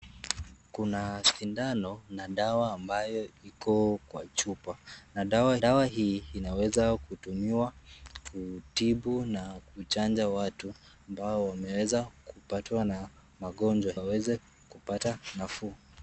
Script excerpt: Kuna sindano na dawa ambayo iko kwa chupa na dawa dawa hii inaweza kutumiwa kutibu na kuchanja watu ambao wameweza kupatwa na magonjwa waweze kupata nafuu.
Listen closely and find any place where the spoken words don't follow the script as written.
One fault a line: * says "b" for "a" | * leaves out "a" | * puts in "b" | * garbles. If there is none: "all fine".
all fine